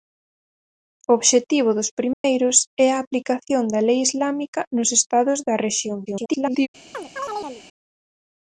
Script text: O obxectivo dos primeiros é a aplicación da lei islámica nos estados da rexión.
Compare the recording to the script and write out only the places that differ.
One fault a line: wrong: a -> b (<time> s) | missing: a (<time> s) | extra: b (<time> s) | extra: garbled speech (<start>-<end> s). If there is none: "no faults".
extra: garbled speech (6.1-6.7 s)